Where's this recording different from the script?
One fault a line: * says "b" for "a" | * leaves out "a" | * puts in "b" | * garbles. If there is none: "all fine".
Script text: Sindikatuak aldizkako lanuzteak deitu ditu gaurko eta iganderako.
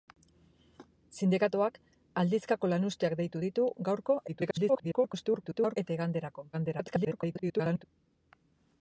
* garbles
* garbles